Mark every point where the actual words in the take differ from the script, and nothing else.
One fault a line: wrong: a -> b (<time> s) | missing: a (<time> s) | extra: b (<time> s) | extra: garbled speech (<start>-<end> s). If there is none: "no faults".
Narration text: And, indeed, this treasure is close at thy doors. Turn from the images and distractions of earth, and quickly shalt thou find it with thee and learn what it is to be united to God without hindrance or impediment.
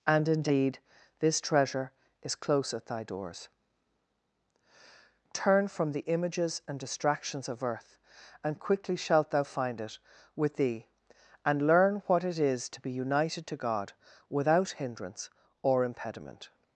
no faults